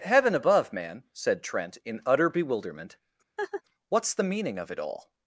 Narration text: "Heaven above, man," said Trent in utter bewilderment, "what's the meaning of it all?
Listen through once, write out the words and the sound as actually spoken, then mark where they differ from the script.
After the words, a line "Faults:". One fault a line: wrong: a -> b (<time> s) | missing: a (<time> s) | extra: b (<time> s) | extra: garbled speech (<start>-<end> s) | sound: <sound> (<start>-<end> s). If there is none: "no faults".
"Heaven above, man," said Trent in utter bewilderment, "what's the meaning of it all?
Faults:
sound: laugh (3.4-3.6 s)